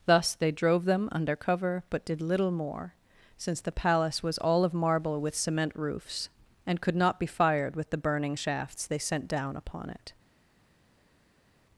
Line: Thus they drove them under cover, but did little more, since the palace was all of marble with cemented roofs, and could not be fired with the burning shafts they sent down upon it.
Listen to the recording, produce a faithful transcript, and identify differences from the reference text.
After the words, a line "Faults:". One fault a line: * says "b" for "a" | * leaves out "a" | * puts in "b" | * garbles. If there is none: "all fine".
Thus they drove them under cover, but did little more, since the palace was all of marble with cement roofs, and could not be fired with the burning shafts they sent down upon it.
Faults:
* says "cement" for "cemented"